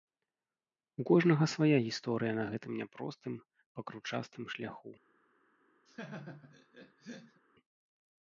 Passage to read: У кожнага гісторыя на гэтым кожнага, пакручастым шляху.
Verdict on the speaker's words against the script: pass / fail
fail